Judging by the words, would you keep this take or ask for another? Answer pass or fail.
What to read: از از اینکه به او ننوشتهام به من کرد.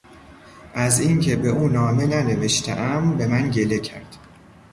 fail